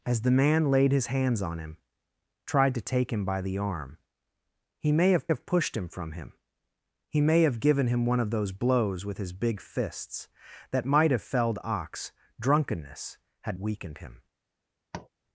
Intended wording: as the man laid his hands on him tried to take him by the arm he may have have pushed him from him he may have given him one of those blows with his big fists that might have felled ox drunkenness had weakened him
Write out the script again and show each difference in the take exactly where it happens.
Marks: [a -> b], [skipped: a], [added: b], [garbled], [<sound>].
as the man laid his hands on him tried to take him by the arm he may have have pushed him from him he may have given him one of those blows with his big fists that might have felled ox drunkenness had weakened him [tap]